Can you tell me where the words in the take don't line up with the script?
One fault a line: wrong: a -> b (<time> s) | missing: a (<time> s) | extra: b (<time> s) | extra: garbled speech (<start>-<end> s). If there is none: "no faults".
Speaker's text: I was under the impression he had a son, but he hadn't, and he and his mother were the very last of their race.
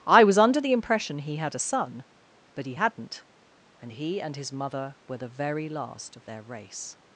no faults